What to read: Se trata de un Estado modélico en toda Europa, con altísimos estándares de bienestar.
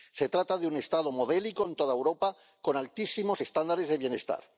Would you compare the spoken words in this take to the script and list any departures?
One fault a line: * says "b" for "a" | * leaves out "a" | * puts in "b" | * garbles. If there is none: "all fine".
all fine